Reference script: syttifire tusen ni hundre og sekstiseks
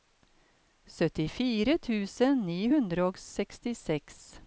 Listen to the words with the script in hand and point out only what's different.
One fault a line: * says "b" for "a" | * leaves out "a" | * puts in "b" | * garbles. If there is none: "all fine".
all fine